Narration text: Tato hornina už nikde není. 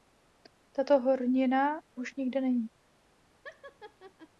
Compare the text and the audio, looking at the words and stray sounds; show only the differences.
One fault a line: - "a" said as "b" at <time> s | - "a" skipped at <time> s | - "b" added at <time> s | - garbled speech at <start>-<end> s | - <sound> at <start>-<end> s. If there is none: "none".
- laugh at 3.4-4.3 s